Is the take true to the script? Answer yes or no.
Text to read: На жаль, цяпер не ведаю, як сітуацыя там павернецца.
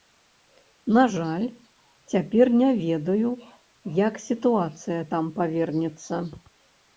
yes